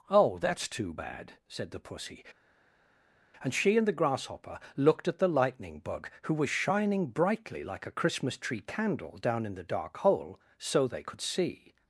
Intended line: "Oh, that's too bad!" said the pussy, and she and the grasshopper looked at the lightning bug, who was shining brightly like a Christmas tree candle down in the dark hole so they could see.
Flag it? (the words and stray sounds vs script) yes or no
no